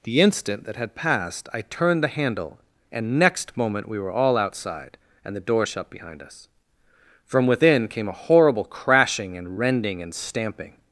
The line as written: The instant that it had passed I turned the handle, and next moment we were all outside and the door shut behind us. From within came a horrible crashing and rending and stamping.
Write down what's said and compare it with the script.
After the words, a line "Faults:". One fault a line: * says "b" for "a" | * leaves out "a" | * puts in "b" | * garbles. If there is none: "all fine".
The instant that had passed I turned the handle, and next moment we were all outside and the door shut behind us. From within came a horrible crashing and rending and stamping.
Faults:
* leaves out "it"